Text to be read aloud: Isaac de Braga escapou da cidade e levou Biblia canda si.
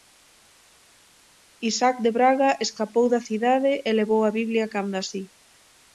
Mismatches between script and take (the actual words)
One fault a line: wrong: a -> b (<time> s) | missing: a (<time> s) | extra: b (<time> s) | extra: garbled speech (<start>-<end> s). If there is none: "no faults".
extra: a (4.2 s)